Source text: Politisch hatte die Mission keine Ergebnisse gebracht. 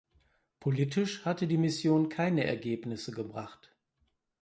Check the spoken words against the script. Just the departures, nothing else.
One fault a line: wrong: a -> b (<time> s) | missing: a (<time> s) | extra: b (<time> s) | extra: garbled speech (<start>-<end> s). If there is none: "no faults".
no faults